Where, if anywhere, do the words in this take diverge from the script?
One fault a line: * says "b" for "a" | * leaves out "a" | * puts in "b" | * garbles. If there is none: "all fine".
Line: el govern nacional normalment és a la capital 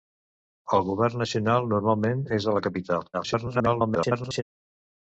* garbles